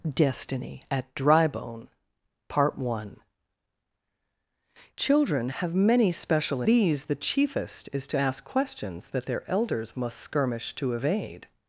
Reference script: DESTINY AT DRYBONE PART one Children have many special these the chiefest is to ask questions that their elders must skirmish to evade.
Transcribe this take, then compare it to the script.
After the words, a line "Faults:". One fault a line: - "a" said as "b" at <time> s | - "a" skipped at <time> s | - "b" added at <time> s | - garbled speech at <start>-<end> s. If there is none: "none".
DESTINY AT DRYBONE PART one Children have many special these the chiefest is to ask questions that their elders must skirmish to evade.
Faults:
none